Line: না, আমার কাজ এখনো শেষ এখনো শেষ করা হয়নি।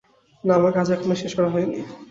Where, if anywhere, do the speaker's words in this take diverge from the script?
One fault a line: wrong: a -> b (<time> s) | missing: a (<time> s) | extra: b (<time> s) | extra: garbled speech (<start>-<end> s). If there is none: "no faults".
missing: এখনো শেষ (1.3 s)